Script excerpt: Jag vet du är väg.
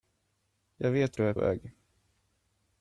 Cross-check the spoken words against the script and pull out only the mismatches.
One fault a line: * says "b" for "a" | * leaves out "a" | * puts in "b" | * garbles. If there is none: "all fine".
all fine